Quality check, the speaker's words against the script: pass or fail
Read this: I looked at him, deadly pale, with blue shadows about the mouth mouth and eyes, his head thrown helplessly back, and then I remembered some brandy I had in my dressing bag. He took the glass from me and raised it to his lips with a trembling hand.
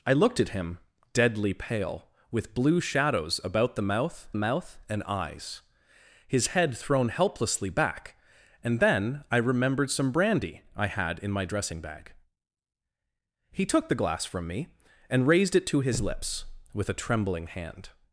pass